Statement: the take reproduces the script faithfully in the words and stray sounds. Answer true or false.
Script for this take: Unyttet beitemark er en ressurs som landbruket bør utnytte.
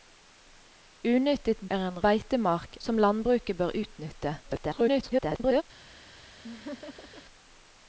false